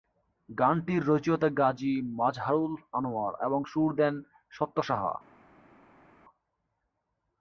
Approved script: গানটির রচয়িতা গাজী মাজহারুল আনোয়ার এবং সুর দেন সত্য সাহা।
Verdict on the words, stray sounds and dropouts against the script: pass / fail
pass